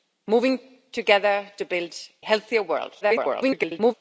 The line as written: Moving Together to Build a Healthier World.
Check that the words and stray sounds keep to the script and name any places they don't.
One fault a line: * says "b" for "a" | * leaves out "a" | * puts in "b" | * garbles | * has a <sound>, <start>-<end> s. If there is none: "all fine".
* leaves out "a"
* garbles